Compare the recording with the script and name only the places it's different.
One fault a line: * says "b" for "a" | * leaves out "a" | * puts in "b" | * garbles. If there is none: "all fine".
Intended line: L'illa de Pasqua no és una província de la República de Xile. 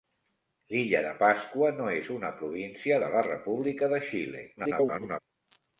* garbles